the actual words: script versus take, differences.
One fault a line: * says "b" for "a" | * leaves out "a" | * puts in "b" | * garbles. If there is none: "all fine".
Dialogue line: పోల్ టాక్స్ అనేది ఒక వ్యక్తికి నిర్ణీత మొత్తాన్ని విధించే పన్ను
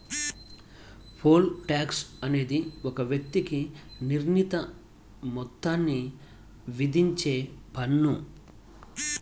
all fine